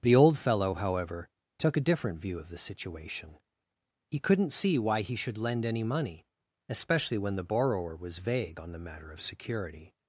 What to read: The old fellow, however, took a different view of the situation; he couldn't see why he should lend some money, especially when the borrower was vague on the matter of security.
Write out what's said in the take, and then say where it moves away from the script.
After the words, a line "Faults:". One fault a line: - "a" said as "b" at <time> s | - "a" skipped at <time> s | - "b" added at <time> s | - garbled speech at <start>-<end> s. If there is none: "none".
The old fellow, however, took a different view of the situation; he couldn't see why he should lend any money, especially when the borrower was vague on the matter of security.
Faults:
- "some" said as "any" at 5.6 s